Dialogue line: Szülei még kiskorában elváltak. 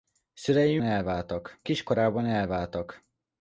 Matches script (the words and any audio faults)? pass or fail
fail